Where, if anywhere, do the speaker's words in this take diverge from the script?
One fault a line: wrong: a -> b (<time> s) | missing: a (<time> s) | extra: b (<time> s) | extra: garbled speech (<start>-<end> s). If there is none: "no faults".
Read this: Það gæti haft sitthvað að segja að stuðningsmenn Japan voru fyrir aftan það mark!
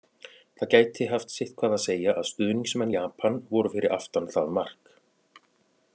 no faults